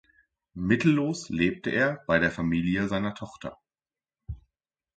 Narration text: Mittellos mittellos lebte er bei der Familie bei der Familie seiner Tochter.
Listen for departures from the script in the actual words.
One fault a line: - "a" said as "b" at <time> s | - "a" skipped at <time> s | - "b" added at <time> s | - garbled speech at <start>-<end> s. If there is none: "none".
- "mittellos" skipped at 1.3 s
- "bei der Familie" skipped at 2.9 s